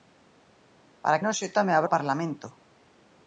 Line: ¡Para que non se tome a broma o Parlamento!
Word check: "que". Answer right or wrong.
wrong